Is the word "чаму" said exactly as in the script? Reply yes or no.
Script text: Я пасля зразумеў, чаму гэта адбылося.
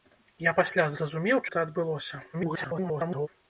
no